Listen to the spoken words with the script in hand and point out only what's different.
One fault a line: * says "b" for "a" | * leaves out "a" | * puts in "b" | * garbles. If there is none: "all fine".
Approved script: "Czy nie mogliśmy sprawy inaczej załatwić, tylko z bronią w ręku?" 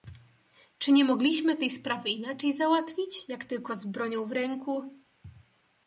* puts in "tej"
* puts in "jak"